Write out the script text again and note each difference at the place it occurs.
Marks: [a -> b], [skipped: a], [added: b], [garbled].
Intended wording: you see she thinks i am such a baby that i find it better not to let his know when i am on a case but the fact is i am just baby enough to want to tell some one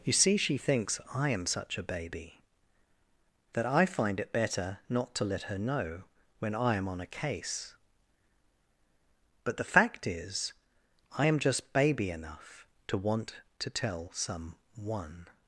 you see she thinks i am such a baby that i find it better not to let [his -> her] know when i am on a case but the fact is i am just baby enough to want to tell some one